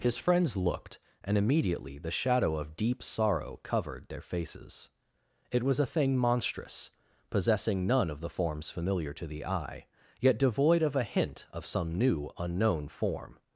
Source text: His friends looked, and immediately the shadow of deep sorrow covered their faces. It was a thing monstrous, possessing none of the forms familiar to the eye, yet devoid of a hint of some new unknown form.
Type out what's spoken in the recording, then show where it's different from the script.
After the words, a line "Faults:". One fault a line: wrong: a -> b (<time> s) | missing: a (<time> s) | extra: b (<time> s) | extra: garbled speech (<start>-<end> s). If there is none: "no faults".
His friends looked, and immediately the shadow of deep sorrow covered their faces. It was a thing monstrous, possessing none of the forms familiar to the eye, yet devoid of a hint of some new unknown form.
Faults:
no faults